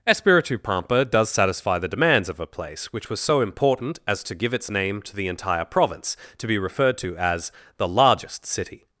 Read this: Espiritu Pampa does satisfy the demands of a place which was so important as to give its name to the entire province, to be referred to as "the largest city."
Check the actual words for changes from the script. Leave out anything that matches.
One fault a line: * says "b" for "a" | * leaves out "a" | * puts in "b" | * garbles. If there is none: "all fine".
all fine